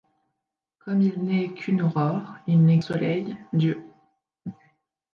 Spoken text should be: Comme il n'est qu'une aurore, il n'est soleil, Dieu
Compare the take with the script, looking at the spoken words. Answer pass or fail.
pass